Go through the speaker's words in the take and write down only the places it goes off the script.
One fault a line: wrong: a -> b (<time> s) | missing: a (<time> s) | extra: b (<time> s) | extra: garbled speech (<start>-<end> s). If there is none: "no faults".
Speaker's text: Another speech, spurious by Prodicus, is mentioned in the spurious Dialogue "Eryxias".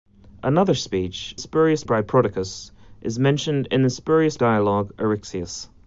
no faults